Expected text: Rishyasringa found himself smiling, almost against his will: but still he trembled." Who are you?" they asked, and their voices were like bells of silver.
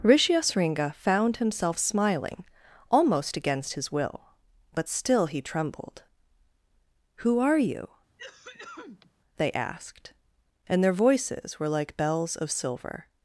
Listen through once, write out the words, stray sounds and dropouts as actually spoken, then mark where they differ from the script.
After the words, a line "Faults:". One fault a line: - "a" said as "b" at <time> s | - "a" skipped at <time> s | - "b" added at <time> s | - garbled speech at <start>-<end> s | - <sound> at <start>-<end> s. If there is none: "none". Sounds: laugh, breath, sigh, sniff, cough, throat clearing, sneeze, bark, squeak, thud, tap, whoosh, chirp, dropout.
Rishyasringa found himself smiling, almost against his will: but still he trembled." Who are you?" they asked, and their voices were like bells of silver.
Faults:
- cough at 8.2-9.1 s